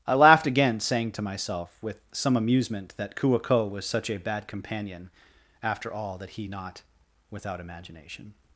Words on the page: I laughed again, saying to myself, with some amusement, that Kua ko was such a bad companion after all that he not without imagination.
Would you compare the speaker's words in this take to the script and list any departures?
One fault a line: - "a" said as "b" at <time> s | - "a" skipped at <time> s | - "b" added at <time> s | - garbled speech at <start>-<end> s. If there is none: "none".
none